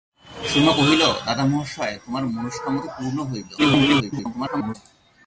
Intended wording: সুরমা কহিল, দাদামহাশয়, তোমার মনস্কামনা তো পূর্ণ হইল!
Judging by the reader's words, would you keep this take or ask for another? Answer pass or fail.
fail